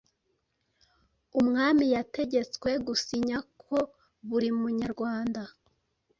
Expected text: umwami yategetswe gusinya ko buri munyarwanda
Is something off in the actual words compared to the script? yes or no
no